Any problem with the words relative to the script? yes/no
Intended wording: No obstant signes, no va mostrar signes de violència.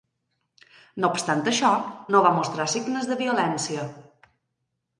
yes